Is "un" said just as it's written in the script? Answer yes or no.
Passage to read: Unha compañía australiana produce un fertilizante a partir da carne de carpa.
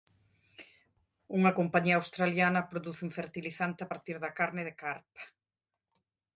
yes